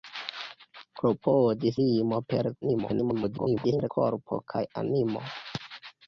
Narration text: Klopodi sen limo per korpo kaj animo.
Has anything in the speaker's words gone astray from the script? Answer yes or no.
yes